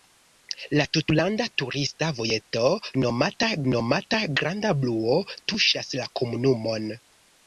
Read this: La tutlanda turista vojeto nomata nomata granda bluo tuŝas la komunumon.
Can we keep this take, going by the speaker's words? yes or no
yes